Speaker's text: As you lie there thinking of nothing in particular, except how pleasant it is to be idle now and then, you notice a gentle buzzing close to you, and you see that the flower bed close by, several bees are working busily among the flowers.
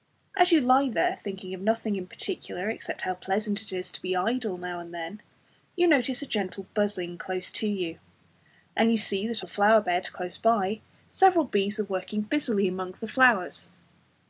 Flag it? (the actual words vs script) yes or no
no